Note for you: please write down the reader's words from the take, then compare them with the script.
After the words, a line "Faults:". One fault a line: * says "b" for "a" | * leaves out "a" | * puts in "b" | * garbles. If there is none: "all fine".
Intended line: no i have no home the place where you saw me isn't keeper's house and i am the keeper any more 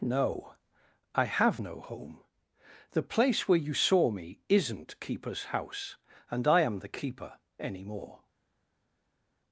no i have no home the place where you saw me isn't keeper's house and i am the keeper any more
Faults:
all fine